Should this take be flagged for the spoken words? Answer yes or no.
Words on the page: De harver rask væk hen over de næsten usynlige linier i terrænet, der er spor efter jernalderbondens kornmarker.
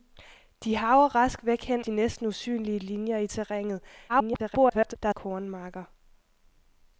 yes